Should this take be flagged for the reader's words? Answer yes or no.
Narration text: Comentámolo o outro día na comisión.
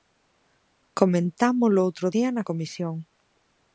no